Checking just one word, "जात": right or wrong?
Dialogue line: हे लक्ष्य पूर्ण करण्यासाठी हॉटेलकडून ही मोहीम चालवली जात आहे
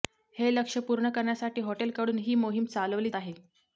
wrong